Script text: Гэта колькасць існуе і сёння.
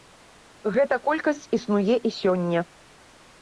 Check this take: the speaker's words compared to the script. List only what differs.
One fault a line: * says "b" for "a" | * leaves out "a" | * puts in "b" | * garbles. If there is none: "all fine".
all fine